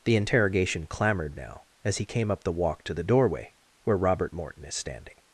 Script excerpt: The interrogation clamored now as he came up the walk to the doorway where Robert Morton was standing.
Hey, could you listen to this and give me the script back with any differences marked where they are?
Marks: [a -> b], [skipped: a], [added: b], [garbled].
The interrogation clamored now as he came up the walk to the doorway where Robert Morton [was -> is] standing.